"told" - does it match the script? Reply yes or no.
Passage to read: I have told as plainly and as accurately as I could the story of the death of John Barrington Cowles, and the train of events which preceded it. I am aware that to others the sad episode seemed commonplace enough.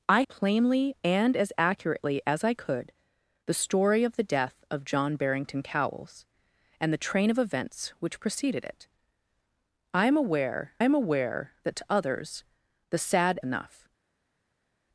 no